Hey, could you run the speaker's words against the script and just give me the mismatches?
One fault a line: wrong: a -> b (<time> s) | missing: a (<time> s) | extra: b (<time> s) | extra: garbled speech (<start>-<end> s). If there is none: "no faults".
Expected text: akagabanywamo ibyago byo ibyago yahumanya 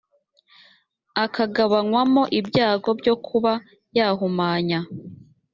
wrong: ibyago -> kuba (3.2 s)